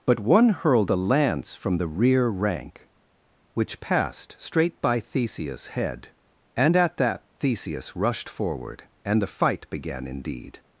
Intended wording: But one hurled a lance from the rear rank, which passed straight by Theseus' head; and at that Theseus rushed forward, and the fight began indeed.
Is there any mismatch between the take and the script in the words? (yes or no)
no